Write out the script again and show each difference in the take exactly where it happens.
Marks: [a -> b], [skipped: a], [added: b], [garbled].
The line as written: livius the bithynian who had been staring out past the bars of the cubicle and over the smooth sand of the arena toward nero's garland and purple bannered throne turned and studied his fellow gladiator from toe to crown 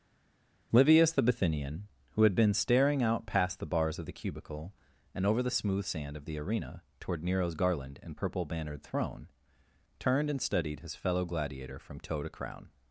livius the bithynian who had been staring out past the bars of the cubicle and over the smooth sand of the arena toward nero's garland and purple bannered throne turned and studied his fellow gladiator from toe to crown